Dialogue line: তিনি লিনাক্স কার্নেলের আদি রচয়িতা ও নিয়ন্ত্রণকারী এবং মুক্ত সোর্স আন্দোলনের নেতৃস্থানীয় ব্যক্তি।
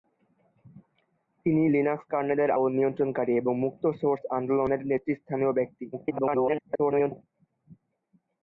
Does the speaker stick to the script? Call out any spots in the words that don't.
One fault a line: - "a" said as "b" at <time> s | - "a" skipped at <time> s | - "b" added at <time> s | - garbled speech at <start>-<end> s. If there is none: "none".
- "আদি রচয়িতা" skipped at 2.5 s
- garbled speech at 5.9-7.2 s